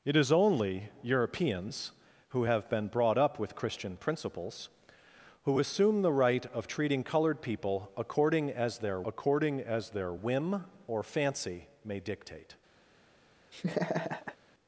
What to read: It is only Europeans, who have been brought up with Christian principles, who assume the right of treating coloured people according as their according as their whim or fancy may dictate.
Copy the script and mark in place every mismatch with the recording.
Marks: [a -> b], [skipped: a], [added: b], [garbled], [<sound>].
It is only Europeans, who have been brought up with Christian principles, who assume the right of treating coloured people according as their according as their whim or fancy may dictate. [laugh]